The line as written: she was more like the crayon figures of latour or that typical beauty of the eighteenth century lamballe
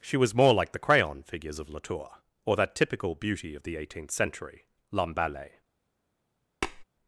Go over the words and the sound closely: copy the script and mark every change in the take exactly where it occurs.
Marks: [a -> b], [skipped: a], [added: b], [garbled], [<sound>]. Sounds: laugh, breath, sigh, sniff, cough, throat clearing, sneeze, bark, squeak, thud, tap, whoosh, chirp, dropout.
she was more like the crayon figures of latour or that typical beauty of the eighteenth century lamballe [tap]